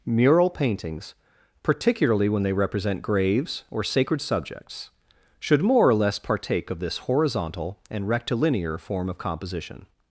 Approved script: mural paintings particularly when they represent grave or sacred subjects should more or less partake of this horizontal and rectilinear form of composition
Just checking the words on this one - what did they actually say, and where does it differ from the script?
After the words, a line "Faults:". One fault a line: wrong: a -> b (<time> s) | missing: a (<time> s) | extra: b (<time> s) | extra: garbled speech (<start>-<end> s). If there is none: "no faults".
mural paintings particularly when they represent graves or sacred subjects should more or less partake of this horizontal and rectilinear form of composition
Faults:
wrong: grave -> graves (3.0 s)